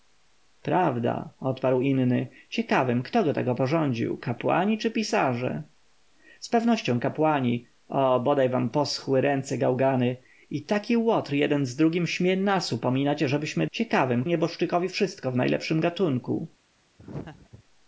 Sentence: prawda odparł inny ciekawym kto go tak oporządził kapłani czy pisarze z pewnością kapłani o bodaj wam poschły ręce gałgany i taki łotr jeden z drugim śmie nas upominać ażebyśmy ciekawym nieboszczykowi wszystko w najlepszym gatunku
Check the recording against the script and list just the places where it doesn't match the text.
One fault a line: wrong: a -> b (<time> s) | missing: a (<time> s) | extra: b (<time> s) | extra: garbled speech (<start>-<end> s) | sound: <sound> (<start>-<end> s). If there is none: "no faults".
sound: laugh (17.0-17.6 s)